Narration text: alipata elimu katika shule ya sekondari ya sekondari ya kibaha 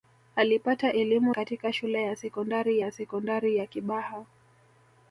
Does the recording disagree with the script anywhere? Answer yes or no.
no